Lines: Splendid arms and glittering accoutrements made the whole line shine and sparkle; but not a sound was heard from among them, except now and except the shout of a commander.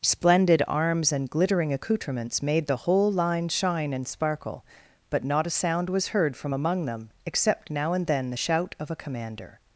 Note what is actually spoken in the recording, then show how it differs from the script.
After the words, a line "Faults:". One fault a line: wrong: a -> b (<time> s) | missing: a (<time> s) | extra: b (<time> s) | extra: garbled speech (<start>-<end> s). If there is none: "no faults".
Splendid arms and glittering accoutrements made the whole line shine and sparkle; but not a sound was heard from among them, except now and then the shout of a commander.
Faults:
wrong: except -> then (8.1 s)